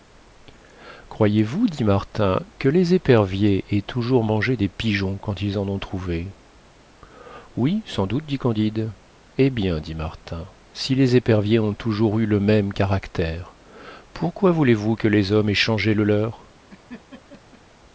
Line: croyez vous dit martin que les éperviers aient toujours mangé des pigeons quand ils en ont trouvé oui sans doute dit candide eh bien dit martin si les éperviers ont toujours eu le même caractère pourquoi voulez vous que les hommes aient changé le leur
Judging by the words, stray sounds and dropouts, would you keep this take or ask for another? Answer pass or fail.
fail